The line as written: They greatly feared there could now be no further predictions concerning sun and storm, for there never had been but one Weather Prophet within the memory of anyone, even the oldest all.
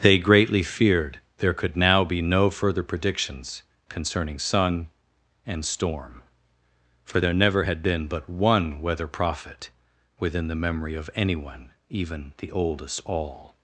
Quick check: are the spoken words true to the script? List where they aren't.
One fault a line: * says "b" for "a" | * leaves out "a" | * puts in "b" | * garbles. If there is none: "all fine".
all fine